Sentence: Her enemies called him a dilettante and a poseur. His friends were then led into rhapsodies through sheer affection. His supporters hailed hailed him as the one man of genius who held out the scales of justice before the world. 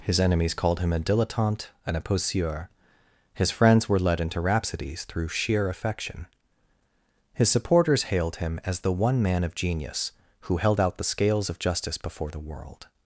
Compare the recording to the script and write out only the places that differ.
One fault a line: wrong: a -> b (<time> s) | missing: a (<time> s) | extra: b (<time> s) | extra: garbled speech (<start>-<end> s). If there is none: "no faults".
wrong: Her -> His (0.0 s)
missing: then (4.0 s)
missing: hailed (8.4 s)